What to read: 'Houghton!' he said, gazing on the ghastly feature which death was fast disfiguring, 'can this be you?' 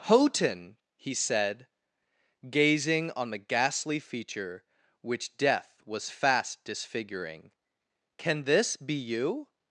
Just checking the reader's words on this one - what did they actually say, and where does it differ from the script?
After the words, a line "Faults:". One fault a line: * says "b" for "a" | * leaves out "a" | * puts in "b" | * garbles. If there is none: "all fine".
'Houghton!' he said, gazing on the ghastly feature which death was fast disfiguring, 'can this be you?'
Faults:
all fine